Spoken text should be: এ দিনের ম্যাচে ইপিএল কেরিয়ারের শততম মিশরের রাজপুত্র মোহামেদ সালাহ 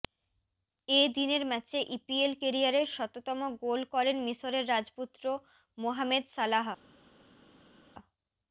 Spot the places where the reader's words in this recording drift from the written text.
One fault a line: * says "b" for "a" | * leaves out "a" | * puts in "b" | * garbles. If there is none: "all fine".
* puts in "গোল করেন"